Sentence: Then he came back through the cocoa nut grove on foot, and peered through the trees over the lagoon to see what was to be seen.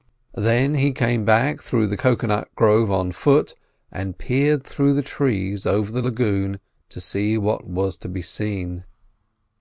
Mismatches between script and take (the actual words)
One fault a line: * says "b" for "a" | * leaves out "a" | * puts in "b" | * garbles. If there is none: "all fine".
all fine